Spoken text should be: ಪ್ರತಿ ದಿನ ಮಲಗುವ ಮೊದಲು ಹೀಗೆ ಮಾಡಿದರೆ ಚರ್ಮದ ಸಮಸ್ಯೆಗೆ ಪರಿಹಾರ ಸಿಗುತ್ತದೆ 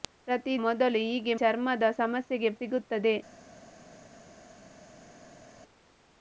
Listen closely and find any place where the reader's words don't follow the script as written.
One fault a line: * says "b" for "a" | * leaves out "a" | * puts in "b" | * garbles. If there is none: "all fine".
* leaves out "ದಿನ ಮಲಗುವ"
* leaves out "ಮಾಡಿದರೆ"
* leaves out "ಪರಿಹಾರ"